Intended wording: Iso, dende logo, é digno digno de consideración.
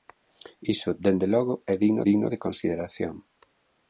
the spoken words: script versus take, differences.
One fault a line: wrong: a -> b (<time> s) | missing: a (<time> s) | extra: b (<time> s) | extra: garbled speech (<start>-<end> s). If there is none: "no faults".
no faults